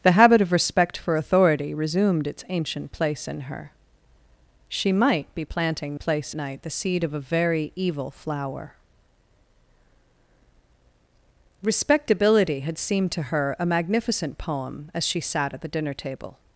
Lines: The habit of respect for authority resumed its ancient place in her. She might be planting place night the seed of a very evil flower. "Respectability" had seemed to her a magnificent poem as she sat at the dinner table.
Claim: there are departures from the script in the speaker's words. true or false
false